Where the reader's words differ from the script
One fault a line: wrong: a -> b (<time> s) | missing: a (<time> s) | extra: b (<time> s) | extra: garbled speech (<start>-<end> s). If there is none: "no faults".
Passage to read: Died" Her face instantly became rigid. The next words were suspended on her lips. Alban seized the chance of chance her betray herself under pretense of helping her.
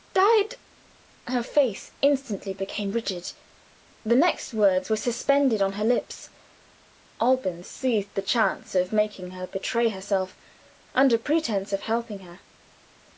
wrong: chance -> making (8.9 s)